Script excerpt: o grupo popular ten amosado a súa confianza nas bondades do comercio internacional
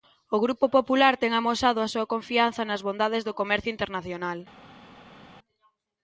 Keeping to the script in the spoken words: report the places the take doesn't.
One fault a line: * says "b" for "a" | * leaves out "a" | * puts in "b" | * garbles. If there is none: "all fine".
all fine